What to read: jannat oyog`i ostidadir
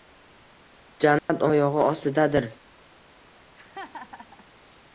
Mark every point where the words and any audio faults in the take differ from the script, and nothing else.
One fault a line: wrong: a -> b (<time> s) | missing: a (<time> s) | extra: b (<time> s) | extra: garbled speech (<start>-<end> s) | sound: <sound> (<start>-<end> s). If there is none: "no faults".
sound: dropout (1.2-1.3 s)
sound: laugh (3.6-4.5 s)